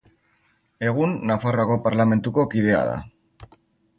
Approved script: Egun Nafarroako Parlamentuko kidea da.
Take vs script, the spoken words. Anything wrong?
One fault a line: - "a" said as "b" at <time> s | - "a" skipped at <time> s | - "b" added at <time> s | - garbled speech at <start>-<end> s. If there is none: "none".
none